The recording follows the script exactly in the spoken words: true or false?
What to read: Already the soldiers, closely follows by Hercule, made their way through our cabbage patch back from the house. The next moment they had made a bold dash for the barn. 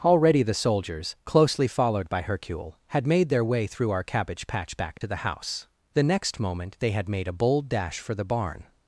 false